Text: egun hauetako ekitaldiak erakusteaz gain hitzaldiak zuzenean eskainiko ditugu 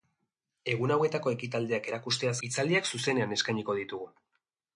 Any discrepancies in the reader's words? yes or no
yes